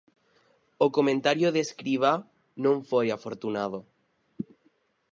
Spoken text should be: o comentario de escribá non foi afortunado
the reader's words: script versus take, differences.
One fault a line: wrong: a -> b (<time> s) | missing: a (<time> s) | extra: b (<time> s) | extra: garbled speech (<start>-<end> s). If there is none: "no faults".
no faults